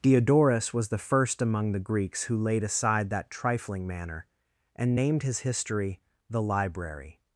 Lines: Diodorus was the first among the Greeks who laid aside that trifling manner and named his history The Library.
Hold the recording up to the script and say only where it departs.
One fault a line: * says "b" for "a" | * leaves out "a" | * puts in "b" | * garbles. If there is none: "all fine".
all fine